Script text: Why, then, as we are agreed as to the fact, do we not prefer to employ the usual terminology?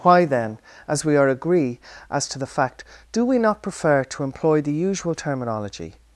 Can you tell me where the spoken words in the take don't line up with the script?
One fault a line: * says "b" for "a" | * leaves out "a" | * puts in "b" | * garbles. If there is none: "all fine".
* says "agree" for "agreed"